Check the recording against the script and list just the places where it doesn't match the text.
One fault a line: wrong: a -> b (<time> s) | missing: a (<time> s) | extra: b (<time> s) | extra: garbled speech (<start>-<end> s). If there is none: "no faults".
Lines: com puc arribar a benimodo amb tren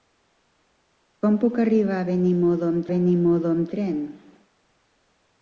extra: benimodo amb (2.9 s)